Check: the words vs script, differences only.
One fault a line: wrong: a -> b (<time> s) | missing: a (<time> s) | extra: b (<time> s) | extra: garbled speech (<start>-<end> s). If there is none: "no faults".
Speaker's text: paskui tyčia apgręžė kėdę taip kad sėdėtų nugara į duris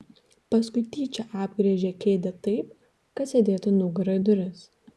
no faults